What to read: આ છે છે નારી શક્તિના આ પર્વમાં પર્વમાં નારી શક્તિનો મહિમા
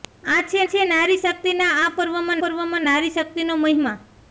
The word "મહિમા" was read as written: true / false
true